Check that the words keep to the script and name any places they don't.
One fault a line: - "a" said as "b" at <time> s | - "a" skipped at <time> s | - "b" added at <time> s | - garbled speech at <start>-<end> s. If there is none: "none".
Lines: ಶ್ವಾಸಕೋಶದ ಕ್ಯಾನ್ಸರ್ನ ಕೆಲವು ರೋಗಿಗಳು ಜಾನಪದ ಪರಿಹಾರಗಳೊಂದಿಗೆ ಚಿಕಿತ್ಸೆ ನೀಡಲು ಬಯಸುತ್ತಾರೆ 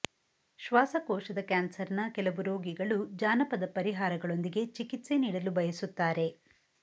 none